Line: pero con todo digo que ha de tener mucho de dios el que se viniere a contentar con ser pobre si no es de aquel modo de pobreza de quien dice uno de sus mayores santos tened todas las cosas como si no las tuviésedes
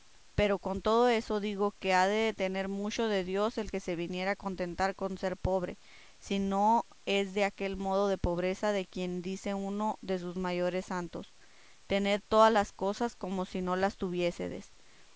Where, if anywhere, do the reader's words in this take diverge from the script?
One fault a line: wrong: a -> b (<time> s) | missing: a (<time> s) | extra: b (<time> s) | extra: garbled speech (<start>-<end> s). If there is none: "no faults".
extra: eso (1.1 s)